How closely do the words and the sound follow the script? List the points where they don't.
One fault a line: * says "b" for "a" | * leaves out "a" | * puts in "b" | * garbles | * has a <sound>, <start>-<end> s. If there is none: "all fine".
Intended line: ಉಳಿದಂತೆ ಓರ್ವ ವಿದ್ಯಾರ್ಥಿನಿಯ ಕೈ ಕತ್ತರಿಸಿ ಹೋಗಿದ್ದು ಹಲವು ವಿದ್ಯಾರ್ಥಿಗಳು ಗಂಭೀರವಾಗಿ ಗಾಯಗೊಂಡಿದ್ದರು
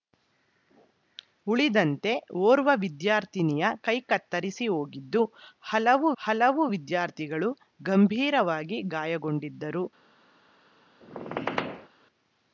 * puts in "ಹಲವು"
* has a squeak, 11.0-11.9 s